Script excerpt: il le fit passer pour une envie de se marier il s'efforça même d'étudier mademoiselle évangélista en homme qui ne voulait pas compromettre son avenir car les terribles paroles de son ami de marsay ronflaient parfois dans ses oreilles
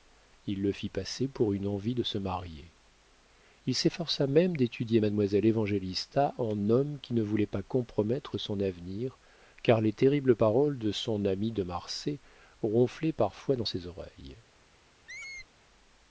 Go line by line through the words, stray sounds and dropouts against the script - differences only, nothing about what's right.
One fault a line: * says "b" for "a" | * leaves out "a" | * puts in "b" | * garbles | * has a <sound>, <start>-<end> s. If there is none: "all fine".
* has a squeak, 15.1-15.5 s